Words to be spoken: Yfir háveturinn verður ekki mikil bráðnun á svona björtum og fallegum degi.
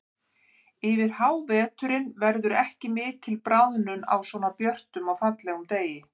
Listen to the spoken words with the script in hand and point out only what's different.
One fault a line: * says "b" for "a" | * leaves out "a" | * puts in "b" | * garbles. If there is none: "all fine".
all fine